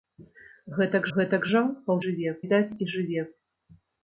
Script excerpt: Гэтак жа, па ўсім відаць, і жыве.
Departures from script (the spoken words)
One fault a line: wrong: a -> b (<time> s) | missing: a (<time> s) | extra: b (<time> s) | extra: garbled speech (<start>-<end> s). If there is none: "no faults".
extra: гэтак (1.2 s)
wrong: ўсім -> жыве (2.0 s)